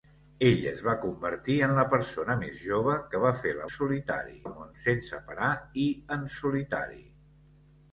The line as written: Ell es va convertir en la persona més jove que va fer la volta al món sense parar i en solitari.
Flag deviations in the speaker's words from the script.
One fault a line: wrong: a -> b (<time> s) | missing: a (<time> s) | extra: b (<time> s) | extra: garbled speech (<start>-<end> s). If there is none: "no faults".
wrong: volta -> solitari (3.7 s)